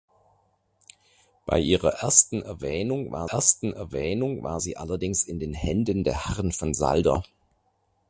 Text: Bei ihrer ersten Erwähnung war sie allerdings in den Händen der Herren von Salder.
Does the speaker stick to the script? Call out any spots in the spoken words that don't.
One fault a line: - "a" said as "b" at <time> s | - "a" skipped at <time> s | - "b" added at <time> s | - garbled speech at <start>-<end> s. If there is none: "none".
- "ersten Erwähnung war" added at 3.3 s